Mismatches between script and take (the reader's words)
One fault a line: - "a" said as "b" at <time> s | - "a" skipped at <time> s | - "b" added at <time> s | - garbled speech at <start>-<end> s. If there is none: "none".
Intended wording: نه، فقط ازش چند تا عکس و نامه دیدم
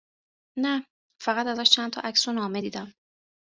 none